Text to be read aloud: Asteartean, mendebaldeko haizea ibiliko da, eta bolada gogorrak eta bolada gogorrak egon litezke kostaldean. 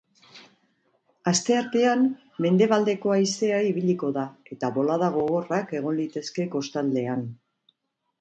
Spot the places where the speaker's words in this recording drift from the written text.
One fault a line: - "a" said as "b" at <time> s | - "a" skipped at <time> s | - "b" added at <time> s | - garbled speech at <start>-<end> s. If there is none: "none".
- "eta bolada gogorrak" skipped at 5.8 s